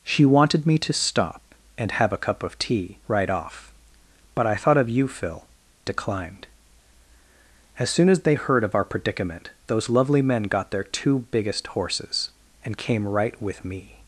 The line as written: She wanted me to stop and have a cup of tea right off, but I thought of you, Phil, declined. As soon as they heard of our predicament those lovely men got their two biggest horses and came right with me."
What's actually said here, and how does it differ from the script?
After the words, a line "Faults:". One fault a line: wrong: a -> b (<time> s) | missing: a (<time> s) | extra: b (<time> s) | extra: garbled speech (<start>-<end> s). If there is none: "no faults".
She wanted me to stop and have a cup of tea right off, but I thought of you, Phil, declined. As soon as they heard of our predicament those lovely men got their two biggest horses and came right with me."
Faults:
no faults